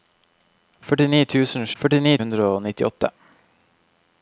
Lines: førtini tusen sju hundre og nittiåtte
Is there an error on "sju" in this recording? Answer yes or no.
yes